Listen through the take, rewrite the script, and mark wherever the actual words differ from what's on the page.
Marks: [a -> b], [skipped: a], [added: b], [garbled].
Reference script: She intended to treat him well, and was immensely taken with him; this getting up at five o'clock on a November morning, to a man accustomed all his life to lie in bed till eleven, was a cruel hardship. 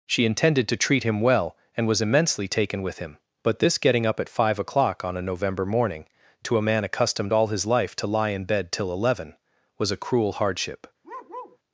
She intended to treat him well, and was immensely taken with him; [added: but] this getting up at five o'clock on a November morning, to a man accustomed all his life to lie in bed till eleven, was a cruel hardship.